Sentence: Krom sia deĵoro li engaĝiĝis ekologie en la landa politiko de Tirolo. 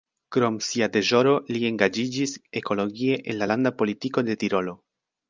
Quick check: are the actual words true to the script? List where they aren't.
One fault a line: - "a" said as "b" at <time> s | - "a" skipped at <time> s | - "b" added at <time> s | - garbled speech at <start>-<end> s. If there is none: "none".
none